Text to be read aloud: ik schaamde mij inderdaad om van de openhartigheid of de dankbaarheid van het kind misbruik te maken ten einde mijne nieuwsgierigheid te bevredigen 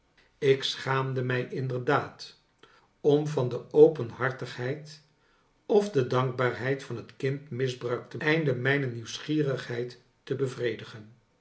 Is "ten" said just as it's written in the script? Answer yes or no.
no